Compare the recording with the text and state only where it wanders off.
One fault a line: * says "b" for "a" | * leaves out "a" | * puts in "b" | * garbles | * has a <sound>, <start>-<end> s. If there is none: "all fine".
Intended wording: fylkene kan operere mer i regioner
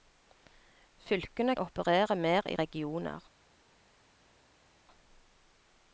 * leaves out "kan"